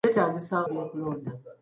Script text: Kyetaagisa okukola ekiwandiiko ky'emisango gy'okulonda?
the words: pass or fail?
fail